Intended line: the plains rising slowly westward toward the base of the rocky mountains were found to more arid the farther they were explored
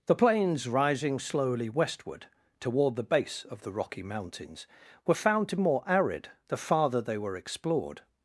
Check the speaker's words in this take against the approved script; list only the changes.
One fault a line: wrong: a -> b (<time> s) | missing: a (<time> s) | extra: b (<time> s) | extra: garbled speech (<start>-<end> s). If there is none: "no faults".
no faults